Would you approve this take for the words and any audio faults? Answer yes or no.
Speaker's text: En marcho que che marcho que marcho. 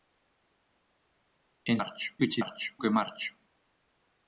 yes